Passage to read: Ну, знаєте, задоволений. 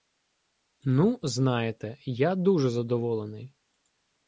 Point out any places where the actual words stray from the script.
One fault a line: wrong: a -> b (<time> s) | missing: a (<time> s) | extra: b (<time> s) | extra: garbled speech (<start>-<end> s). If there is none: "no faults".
extra: я дуже (2.1 s)